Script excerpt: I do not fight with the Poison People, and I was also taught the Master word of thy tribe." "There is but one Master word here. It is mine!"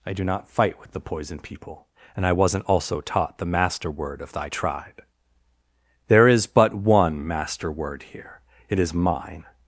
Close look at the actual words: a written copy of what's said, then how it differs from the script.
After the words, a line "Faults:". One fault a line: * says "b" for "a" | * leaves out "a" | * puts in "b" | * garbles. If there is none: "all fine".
I do not fight with the Poison People, and I wasn't also taught the Master word of thy tribe." "There is but one Master word here. It is mine!"
Faults:
* says "wasn't" for "was"